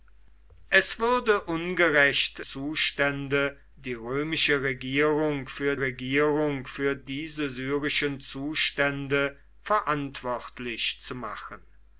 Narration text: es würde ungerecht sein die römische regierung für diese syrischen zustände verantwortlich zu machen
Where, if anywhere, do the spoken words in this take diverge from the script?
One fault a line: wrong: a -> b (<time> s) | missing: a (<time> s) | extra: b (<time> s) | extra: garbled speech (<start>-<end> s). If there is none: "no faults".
wrong: sein -> zustände (2.4 s)
extra: regierung für (5.8 s)